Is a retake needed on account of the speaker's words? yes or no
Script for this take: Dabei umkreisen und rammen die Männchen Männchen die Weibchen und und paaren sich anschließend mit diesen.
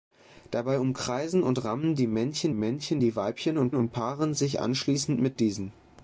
no